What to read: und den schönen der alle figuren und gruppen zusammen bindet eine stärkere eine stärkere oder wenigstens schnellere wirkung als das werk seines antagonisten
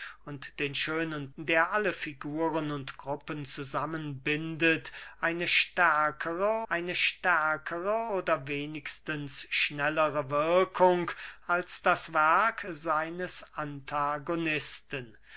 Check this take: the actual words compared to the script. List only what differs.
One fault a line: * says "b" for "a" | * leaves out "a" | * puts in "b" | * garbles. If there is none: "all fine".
all fine